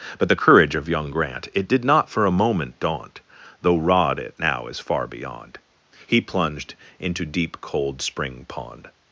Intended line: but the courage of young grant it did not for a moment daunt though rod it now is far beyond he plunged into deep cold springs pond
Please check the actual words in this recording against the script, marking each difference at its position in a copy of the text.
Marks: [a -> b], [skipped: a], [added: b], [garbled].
but the courage of young grant it did not for a moment daunt though rod it now is far beyond he plunged into deep cold [springs -> spring] pond